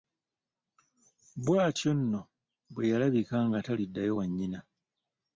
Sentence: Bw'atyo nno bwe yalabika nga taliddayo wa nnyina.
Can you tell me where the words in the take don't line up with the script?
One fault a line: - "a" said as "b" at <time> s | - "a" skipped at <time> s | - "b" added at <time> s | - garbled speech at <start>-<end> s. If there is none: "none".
none